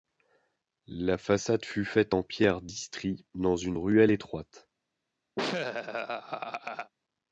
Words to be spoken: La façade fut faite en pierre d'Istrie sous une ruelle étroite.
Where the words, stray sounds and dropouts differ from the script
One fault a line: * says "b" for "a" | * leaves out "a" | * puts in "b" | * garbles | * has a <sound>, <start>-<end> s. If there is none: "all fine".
* says "dans" for "sous"
* has a laugh, 5.4-6.9 s